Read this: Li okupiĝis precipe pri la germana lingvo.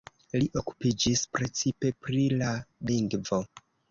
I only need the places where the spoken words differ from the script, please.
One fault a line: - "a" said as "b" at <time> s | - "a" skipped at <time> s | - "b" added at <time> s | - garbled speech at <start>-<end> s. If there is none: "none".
- "germana" skipped at 2.5 s